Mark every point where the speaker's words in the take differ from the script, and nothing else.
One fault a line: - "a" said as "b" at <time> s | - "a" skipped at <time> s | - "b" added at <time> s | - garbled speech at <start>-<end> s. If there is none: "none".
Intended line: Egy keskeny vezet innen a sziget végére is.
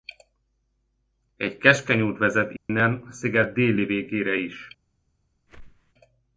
- "út" added at 2.0 s
- "déli" added at 3.5 s